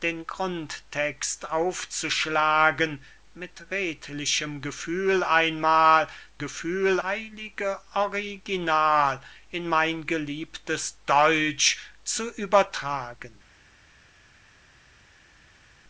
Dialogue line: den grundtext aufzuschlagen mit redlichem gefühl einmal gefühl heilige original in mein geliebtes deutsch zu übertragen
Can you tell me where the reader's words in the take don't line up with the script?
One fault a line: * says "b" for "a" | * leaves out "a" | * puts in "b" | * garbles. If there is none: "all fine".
all fine